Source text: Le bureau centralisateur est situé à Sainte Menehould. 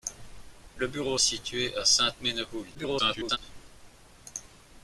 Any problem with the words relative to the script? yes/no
yes